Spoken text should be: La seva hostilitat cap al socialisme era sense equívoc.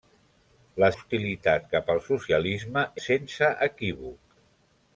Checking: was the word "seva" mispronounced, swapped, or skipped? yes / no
yes